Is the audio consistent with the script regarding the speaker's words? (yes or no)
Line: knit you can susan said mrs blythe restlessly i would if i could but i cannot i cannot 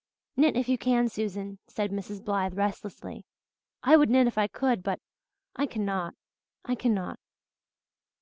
no